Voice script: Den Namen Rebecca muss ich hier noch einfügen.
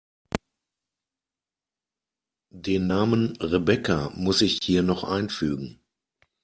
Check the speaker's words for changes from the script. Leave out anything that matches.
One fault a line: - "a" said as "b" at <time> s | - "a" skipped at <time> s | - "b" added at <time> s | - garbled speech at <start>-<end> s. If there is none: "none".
none